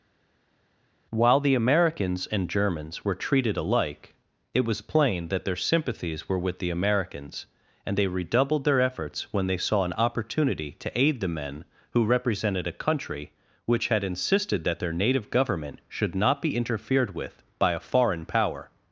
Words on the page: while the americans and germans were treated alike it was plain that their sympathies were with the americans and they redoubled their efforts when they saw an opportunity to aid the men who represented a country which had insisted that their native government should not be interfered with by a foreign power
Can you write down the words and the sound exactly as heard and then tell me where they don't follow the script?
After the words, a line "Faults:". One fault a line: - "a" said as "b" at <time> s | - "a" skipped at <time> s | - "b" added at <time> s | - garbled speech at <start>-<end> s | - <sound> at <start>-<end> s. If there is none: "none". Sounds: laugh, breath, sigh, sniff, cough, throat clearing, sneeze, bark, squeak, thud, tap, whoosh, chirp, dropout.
while the americans and germans were treated alike it was plain that their sympathies were with the americans and they redoubled their efforts when they saw an opportunity to aid the men who represented a country which had insisted that their native government should not be interfered with by a foreign power
Faults:
none